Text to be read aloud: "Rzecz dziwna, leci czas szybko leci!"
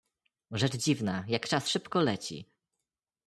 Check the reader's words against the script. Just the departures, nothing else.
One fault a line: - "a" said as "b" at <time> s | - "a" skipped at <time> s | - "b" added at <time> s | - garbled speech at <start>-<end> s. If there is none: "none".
- "leci" said as "jak" at 1.3 s